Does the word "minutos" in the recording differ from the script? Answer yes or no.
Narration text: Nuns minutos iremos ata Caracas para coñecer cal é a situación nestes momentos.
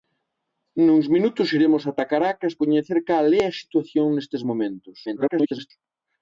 no